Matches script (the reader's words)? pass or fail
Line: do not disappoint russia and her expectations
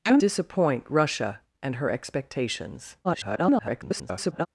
fail